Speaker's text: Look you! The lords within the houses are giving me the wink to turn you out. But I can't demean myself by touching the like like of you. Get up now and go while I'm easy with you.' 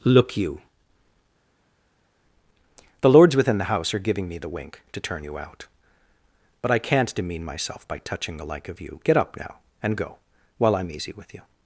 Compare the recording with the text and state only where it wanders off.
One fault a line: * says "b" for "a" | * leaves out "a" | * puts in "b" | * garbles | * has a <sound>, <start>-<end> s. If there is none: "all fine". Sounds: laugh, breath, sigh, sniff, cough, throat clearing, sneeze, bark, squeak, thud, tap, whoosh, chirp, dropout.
* says "house" for "houses"
* leaves out "like"